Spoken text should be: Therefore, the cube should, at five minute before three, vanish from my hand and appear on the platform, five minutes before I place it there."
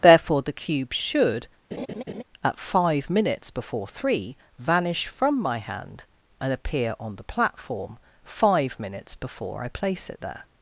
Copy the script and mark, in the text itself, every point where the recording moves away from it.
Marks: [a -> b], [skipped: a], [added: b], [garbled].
Therefore, the cube should, at five [minute -> minutes] before three, vanish from my hand and appear on the platform, five minutes before I place it there."